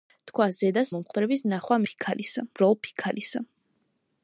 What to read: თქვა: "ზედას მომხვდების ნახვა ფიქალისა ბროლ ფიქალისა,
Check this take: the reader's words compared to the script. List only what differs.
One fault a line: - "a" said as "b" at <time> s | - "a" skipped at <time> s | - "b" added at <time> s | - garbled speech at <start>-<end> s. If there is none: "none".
none